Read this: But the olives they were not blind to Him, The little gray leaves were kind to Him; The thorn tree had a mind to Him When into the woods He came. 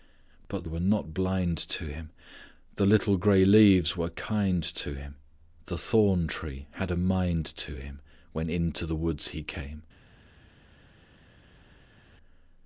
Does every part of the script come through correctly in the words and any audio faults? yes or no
no